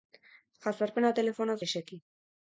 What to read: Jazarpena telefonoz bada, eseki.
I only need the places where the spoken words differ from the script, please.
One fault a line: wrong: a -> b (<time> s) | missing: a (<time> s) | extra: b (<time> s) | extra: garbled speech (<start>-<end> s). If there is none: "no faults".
missing: bada (1.6 s)